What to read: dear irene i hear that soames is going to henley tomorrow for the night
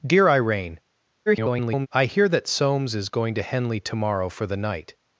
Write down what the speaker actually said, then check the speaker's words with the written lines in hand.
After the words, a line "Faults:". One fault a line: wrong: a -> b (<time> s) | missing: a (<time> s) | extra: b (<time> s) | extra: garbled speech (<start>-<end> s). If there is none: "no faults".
dear irene [garbled] i hear that soames is going to henley tomorrow for the night
Faults:
extra: garbled speech (1.3-1.9 s)